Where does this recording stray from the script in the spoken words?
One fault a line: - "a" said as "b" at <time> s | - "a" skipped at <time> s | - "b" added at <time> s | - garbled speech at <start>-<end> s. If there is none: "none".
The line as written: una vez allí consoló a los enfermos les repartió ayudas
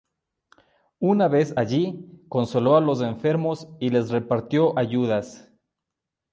- "y" added at 3.8 s